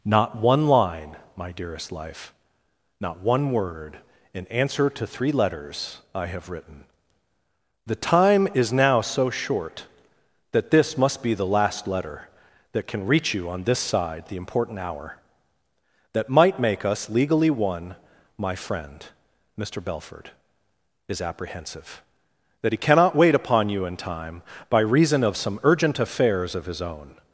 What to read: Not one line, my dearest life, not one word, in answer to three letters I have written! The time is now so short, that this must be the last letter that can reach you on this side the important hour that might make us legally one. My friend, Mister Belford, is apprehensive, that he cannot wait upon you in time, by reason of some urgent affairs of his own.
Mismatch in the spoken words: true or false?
false